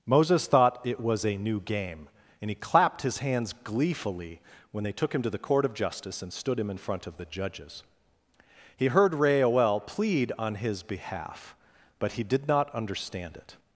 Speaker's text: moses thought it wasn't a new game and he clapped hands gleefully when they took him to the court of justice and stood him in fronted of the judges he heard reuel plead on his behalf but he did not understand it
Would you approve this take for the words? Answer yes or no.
no